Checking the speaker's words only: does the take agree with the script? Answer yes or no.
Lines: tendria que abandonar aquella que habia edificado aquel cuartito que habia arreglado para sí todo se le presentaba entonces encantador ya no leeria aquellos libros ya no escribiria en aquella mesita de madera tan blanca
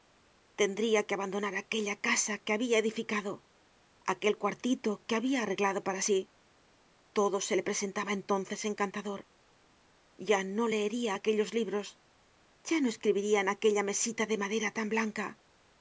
no